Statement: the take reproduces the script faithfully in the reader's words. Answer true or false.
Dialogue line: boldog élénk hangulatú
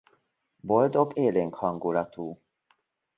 true